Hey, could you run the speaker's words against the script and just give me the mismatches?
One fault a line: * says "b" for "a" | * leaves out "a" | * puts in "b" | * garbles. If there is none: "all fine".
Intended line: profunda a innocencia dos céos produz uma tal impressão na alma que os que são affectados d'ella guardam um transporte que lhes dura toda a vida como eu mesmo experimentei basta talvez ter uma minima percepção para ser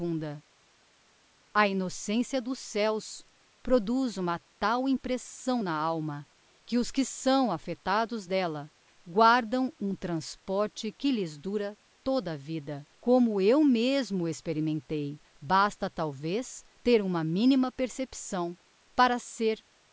all fine